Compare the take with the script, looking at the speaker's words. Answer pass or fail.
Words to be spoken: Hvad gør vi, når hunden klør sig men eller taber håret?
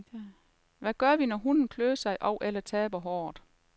fail